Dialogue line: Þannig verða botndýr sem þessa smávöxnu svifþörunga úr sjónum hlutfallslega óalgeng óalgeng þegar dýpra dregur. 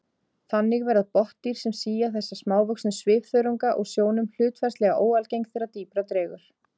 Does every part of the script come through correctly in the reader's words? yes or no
no